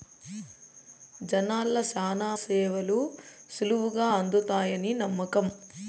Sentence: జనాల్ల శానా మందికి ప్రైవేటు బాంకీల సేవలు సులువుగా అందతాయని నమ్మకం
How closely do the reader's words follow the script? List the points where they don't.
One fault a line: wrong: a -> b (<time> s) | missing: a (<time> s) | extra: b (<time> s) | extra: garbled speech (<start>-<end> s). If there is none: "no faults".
missing: మందికి ప్రైవేటు బాంకీల (2.3 s)